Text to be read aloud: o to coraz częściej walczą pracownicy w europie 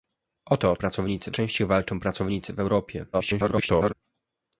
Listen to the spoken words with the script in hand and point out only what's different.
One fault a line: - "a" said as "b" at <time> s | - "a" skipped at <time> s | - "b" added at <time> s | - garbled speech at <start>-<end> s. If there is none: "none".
- "coraz" said as "pracownicy" at 0.8 s
- garbled speech at 3.1-3.9 s